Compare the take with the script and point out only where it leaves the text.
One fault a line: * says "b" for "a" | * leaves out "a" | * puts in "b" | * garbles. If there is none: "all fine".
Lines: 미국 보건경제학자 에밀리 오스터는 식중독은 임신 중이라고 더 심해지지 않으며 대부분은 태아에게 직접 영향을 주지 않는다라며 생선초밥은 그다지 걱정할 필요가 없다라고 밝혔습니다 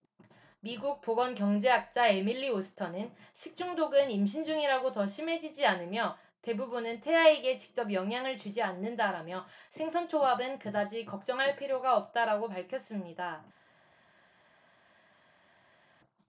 all fine